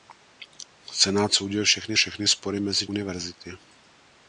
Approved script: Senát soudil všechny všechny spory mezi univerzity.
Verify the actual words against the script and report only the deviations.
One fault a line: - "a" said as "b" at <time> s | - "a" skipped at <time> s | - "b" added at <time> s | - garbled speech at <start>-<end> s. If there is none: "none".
none